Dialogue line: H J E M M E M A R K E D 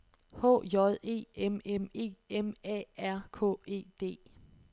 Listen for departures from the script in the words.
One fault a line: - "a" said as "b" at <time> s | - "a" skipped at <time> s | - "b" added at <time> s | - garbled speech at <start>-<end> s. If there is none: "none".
none